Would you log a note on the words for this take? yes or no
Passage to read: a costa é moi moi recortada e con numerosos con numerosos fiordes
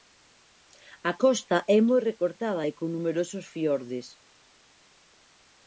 yes